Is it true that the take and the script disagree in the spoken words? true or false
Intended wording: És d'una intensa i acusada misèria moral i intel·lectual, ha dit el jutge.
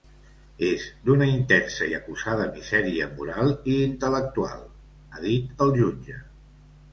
false